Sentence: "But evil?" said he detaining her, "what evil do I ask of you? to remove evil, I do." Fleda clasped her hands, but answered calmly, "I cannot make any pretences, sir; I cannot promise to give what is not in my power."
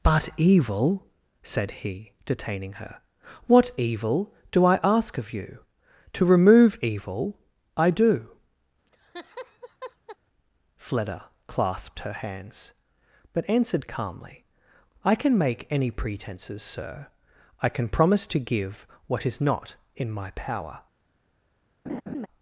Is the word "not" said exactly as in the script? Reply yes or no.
yes